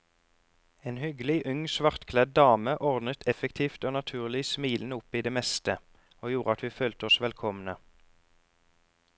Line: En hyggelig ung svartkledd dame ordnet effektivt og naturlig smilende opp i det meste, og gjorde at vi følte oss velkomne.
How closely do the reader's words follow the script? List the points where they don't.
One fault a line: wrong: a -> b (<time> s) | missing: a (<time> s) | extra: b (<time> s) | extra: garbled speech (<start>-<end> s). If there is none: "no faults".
no faults